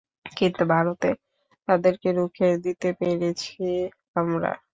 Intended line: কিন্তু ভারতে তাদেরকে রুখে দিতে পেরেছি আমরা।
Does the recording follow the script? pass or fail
pass